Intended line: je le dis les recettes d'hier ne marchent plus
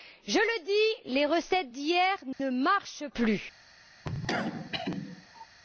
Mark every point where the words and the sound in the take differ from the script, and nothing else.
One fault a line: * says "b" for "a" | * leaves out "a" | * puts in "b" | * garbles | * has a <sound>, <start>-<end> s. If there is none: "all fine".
* has a dropout, 2.3-2.4 s
* has a cough, 4.0-5.5 s